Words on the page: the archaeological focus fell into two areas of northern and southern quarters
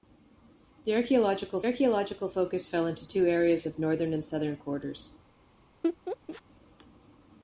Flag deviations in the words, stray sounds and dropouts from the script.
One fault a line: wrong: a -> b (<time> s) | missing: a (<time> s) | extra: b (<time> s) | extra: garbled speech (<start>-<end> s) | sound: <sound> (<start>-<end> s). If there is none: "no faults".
extra: archaeological (1.6 s)
sound: laugh (5.8-6.4 s)